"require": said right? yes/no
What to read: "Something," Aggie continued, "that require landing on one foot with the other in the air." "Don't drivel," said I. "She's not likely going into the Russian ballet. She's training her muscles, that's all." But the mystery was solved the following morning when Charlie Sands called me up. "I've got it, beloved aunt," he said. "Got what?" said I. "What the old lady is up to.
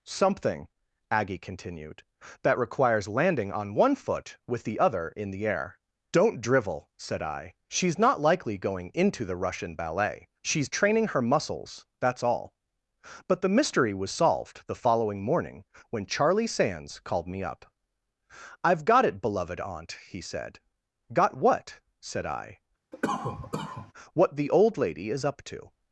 no